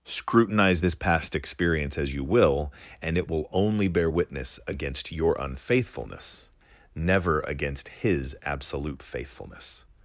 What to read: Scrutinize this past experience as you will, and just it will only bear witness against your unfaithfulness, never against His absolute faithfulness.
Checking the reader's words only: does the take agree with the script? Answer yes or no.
no